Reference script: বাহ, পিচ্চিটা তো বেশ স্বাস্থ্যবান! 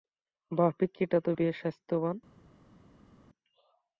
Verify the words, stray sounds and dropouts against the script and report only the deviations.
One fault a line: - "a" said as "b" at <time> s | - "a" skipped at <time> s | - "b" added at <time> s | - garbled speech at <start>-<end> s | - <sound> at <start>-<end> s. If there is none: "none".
none